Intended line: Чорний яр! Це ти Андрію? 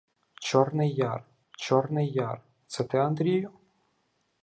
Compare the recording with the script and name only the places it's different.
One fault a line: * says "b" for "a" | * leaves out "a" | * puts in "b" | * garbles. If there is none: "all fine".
* puts in "чорний яр"